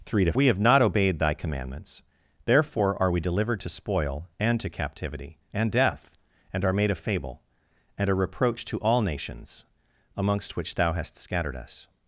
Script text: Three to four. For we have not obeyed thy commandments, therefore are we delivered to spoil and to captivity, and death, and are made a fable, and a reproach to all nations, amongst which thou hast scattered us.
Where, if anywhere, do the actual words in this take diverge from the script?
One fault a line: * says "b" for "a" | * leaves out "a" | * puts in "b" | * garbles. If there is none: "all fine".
* leaves out "four For"